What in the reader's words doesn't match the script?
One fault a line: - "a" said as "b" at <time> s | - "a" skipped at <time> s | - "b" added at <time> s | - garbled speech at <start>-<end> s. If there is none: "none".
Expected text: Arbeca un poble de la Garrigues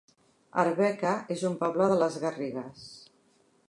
- "es" added at 1.3 s
- "la" said as "les" at 2.0 s